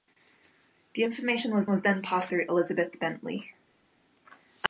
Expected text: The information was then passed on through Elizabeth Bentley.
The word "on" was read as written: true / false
false